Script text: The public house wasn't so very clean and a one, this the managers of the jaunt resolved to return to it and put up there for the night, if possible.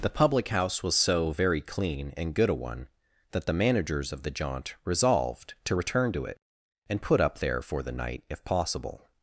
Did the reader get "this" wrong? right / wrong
wrong